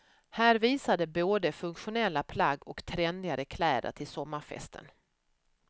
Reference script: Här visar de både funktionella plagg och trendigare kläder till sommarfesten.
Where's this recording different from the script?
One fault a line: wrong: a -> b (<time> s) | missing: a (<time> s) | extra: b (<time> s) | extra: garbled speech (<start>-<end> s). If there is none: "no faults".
no faults